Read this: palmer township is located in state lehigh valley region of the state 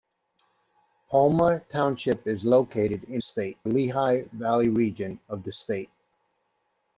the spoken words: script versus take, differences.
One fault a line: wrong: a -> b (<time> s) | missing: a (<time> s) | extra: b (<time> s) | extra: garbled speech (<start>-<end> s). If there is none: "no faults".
no faults